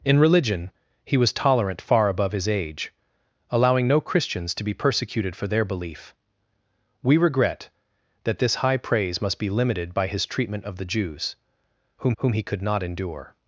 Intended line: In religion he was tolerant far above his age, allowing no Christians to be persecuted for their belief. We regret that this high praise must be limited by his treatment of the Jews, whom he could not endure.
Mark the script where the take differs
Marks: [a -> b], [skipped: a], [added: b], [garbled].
In religion he was tolerant far above his age, allowing no Christians to be persecuted for their belief. We regret that this high praise must be limited by his treatment of the Jews, whom [added: whom] he could not endure.